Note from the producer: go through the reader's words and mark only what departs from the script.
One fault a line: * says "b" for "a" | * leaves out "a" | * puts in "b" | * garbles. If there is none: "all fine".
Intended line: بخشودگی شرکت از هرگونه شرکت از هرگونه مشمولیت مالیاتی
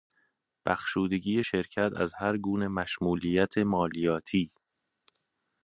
* leaves out "شرکت از هرگونه"